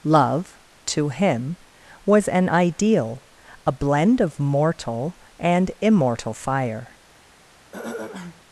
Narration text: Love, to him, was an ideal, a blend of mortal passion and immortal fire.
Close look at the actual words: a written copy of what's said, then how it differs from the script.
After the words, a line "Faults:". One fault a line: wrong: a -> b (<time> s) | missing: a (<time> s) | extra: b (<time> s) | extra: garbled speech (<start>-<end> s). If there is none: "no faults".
Love, to him, was an ideal, a blend of mortal and immortal fire.
Faults:
missing: passion (5.2 s)